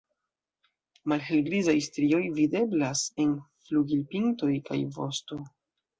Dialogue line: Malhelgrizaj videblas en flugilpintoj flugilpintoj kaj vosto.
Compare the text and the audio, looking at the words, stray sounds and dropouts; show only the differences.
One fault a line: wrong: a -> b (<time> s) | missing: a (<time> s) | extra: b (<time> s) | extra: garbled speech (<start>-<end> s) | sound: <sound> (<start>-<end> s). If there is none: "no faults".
extra: strioj (1.9 s)
missing: flugilpintoj (4.5 s)